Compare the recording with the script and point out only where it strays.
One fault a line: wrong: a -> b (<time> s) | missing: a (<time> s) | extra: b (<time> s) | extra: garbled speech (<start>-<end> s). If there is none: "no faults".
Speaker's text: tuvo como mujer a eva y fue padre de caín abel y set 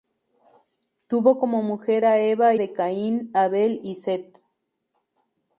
missing: y fue padre (2.5 s)